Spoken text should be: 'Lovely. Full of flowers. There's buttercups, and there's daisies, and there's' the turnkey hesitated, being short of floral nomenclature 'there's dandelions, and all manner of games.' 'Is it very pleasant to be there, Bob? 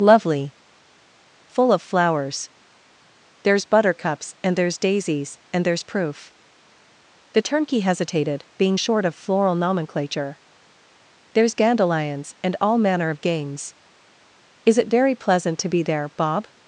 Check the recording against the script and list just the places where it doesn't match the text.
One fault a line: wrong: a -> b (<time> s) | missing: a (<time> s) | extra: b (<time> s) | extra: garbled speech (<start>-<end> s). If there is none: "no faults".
extra: proof (5.8 s)